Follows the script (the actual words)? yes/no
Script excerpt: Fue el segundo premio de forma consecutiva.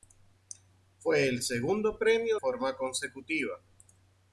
no